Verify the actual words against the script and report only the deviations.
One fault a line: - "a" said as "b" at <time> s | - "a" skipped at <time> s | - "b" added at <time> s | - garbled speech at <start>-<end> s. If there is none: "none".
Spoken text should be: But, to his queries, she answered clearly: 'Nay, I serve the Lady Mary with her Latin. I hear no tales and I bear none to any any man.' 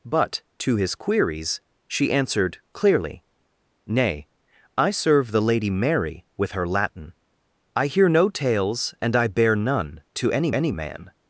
none